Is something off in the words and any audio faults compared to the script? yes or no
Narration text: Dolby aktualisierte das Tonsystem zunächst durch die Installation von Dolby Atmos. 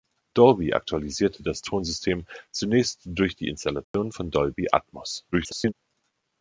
yes